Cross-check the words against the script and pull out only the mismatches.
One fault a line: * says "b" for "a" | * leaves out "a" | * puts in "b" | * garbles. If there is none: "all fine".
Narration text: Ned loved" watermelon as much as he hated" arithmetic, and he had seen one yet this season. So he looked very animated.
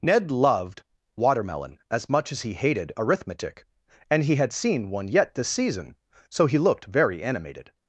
all fine